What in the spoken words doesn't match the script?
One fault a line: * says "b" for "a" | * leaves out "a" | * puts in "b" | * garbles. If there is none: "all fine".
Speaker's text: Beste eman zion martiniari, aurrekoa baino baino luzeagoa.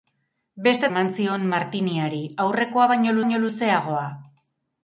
all fine